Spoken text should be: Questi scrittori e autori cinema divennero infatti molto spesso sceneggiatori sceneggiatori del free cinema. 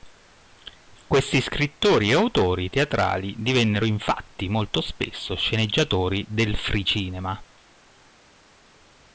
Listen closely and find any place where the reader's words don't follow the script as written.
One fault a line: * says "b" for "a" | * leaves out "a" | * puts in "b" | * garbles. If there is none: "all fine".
* says "teatrali" for "cinema"
* leaves out "sceneggiatori"